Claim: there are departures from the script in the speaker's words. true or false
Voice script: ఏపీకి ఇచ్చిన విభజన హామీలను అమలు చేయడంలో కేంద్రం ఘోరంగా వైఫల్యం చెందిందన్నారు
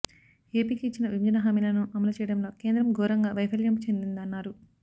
false